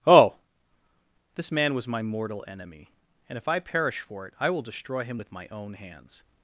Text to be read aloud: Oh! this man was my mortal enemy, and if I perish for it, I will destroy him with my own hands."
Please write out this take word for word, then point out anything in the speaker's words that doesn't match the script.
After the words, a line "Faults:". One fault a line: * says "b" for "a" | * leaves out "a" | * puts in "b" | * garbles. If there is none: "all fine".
Oh! this man was my mortal enemy, and if I perish for it, I will destroy him with my own hands."
Faults:
all fine